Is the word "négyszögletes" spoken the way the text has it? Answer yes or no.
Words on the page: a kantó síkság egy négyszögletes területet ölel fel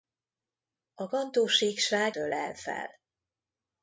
no